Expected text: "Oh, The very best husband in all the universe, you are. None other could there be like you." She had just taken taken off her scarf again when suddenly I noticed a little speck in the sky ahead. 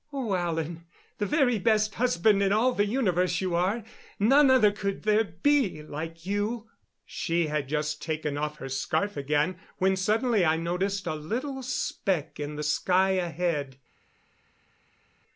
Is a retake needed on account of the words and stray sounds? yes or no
yes